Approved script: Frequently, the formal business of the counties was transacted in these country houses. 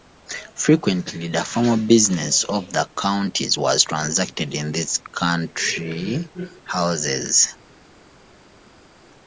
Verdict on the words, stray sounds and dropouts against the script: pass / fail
pass